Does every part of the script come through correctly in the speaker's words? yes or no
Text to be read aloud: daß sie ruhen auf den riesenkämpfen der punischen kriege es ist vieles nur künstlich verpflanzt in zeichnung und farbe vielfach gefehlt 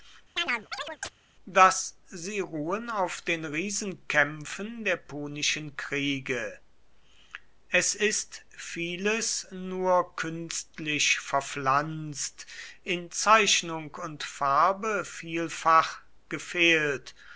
yes